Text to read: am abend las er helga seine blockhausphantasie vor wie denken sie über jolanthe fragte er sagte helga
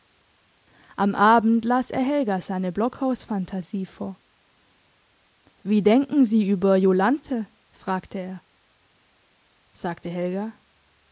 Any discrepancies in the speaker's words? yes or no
no